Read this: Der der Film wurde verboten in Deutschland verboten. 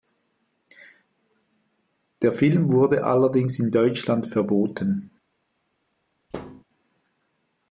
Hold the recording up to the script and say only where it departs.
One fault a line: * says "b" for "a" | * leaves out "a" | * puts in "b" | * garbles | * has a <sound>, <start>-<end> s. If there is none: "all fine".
* leaves out "der"
* says "allerdings" for "verboten"
* has a thud, 6.3-6.6 s